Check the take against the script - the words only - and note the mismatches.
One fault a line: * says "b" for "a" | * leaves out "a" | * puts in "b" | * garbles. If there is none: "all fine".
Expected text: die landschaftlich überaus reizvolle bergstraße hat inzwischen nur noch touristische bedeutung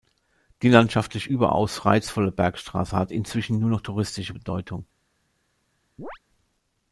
all fine